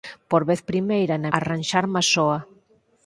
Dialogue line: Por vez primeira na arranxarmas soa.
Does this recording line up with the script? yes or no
yes